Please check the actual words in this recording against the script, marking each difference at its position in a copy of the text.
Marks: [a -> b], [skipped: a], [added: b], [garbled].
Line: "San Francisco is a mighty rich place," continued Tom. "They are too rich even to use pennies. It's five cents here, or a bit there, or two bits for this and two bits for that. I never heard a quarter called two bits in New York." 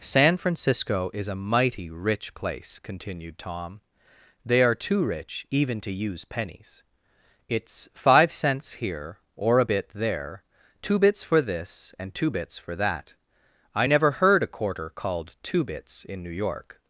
"San Francisco is a mighty rich place," continued Tom. "They are too rich even to use pennies. It's five cents here, or a bit there, [skipped: or] two bits for this and two bits for that. I never heard a quarter called two bits in New York."